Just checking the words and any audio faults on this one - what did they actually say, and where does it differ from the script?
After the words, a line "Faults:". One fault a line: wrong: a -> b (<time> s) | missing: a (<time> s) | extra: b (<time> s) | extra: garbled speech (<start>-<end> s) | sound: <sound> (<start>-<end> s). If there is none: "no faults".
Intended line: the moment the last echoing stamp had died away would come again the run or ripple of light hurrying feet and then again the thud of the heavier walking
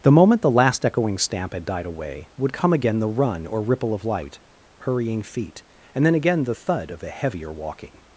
the moment the last echoing stamp had died away would come again the run or ripple of light hurrying feet and then again the thud of a heavier walking
Faults:
wrong: the -> a (7.0 s)